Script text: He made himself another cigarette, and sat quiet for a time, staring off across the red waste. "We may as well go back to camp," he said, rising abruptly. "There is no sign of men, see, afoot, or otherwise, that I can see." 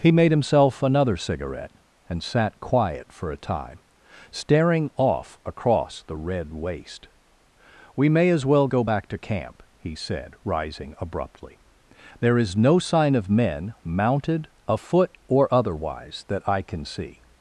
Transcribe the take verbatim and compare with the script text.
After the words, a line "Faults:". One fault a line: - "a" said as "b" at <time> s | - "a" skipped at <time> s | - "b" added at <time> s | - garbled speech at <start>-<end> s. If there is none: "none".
He made himself another cigarette, and sat quiet for a time, staring off across the red waste. "We may as well go back to camp," he said, rising abruptly. "There is no sign of men, mounted, afoot, or otherwise, that I can see."
Faults:
- "see" said as "mounted" at 13.8 s